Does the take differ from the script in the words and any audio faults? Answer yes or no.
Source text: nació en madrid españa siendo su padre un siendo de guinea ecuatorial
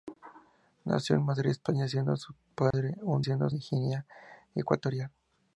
yes